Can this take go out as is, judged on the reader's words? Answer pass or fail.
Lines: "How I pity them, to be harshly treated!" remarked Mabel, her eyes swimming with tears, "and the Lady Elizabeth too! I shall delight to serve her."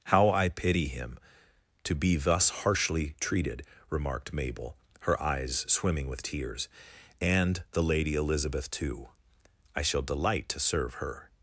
fail